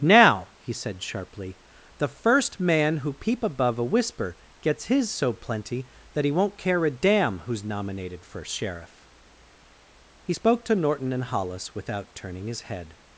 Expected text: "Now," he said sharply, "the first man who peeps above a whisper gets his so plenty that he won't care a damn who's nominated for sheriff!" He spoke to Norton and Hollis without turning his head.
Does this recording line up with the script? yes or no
no